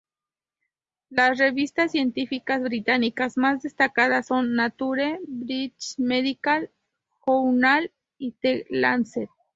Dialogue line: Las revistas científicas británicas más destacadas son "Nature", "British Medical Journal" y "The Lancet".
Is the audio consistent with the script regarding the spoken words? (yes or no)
yes